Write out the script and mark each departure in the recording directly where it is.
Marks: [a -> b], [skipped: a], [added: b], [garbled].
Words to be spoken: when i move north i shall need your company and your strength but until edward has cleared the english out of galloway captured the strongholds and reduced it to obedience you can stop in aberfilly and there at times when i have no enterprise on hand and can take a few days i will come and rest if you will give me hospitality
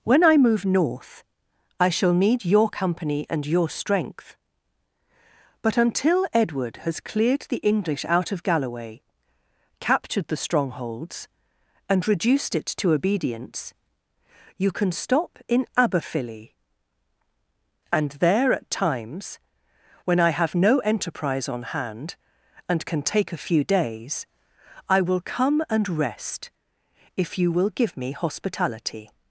when i move north i shall need your company and your strength but until edward has cleared the english out of galloway captured the strongholds and reduced it to obedience you can stop in aberfilly and there at times when i have no enterprise on hand and can take a few days i will come and rest if you will give me hospitality